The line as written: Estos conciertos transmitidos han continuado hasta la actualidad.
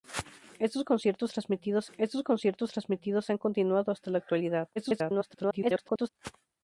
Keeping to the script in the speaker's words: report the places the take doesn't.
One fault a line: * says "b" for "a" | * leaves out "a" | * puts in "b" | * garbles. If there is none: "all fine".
* puts in "estos conciertos transmitidos"
* garbles